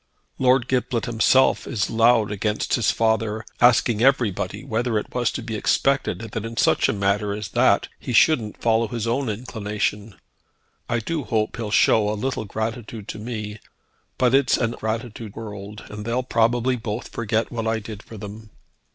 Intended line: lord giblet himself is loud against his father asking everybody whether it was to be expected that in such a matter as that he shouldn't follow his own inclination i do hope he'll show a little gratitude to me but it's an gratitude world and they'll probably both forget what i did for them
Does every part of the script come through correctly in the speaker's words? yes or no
yes